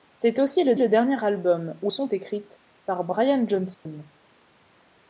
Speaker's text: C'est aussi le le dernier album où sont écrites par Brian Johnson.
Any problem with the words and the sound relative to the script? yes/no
yes